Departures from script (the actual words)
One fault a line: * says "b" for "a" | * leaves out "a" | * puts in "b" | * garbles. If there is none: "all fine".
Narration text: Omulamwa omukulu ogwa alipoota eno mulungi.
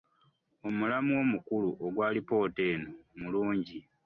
all fine